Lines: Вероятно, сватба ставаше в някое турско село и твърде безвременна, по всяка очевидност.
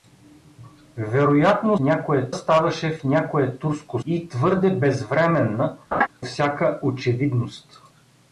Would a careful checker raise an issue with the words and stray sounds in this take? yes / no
yes